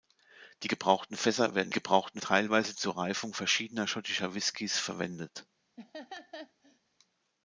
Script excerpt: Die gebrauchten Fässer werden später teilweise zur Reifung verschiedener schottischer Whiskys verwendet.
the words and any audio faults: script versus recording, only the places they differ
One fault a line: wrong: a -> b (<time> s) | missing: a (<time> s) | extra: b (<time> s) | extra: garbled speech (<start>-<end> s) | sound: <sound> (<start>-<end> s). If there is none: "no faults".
wrong: später -> gebrauchten (1.7 s)
sound: laugh (5.8-6.8 s)